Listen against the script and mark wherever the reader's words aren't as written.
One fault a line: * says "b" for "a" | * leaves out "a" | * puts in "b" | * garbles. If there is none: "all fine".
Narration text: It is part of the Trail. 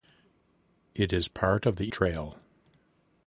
all fine